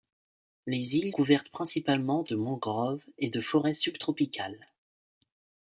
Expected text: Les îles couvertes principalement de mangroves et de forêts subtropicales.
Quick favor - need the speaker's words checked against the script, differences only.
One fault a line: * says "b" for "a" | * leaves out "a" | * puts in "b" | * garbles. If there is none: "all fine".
all fine